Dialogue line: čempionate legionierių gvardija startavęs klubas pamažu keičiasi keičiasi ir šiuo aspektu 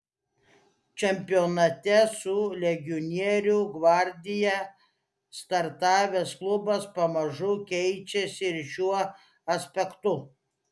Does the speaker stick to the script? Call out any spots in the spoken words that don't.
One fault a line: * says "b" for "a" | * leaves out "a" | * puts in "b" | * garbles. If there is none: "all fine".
* puts in "su"
* leaves out "keičiasi"